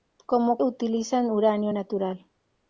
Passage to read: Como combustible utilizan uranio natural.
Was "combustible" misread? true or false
true